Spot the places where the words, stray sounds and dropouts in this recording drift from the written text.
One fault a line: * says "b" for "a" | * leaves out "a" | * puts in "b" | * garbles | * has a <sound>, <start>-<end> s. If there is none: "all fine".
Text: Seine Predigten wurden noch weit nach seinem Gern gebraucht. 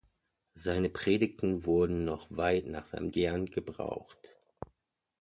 all fine